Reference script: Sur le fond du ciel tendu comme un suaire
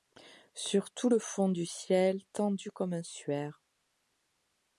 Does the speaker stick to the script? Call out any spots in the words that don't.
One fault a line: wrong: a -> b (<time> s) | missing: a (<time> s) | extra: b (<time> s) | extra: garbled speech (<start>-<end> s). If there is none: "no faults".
extra: tout (0.9 s)